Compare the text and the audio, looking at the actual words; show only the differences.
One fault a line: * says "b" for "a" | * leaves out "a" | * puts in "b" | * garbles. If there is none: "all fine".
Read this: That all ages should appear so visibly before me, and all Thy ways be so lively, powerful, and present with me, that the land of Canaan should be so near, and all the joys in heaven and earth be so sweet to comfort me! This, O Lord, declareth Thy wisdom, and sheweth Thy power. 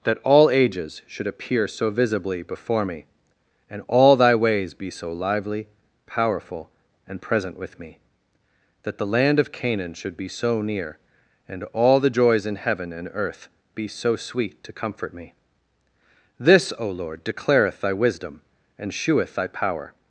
all fine